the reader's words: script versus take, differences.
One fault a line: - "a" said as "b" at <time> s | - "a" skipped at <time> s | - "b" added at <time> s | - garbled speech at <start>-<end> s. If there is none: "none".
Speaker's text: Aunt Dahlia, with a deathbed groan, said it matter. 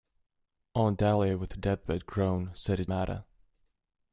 none